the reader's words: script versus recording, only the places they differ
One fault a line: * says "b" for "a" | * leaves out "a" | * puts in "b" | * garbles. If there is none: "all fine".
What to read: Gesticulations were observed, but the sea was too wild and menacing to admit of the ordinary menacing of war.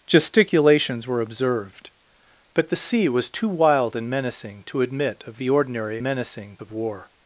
all fine